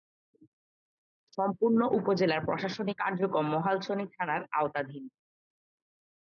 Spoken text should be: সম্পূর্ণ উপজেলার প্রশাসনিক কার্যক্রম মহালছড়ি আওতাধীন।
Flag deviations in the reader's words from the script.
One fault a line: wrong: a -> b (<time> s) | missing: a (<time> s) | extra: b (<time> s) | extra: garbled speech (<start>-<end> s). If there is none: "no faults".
extra: থানার (4.1 s)